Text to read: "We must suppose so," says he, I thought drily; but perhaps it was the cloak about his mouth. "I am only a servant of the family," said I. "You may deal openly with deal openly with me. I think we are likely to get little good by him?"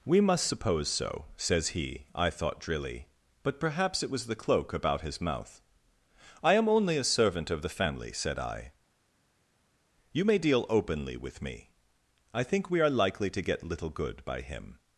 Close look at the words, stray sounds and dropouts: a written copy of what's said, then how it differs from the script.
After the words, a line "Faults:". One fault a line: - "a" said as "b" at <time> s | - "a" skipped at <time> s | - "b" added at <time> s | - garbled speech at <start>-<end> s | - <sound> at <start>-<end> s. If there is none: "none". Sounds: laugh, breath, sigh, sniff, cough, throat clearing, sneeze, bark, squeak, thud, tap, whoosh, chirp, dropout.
"We must suppose so," says he, I thought drily; but perhaps it was the cloak about his mouth. "I am only a servant of the family," said I. "You may deal openly with me. I think we are likely to get little good by him?"
Faults:
- "deal openly with" skipped at 11.4 s